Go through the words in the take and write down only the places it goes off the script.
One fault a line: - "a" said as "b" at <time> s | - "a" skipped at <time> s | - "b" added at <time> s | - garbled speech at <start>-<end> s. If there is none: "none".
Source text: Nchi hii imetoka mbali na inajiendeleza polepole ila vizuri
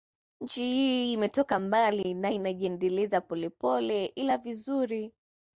none